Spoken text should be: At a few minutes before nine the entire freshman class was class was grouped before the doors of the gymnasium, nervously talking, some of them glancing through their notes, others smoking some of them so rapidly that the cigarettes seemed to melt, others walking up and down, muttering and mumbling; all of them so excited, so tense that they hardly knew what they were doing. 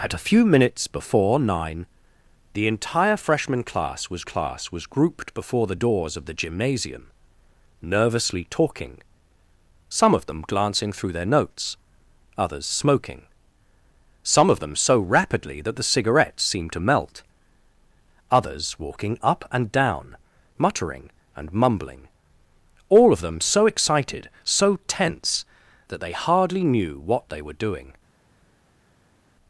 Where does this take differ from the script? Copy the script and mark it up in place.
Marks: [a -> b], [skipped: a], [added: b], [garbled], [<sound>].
At a few minutes before nine the entire freshman class was class was grouped before the doors of the gymnasium, nervously talking, some of them glancing through their notes, others smoking some of them so rapidly that the cigarettes seemed to melt, others walking up and down, muttering and mumbling; all of them so excited, so tense that they hardly knew what they were doing.